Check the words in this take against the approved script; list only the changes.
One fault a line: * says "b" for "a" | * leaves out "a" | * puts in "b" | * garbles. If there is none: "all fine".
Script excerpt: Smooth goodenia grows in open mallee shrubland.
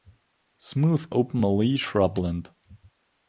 * leaves out "goodenia grows in"